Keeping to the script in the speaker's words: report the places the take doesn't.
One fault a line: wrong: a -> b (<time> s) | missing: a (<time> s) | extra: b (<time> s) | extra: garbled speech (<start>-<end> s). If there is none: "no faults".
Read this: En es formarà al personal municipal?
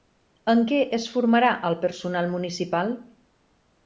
extra: què (0.7 s)